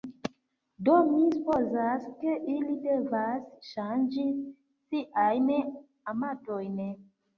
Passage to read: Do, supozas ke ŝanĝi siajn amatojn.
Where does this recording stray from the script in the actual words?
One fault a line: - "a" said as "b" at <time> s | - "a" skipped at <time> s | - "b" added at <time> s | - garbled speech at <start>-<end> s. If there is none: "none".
- "mi" added at 1.1 s
- "ili devas" added at 2.5 s